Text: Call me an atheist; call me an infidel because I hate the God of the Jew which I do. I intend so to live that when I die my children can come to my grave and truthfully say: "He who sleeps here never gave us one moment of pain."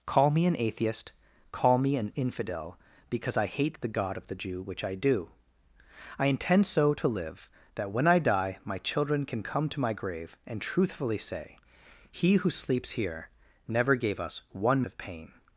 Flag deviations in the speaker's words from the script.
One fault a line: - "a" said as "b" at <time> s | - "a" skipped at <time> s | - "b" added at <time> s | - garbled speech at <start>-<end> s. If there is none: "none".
- "moment" skipped at 14.8 s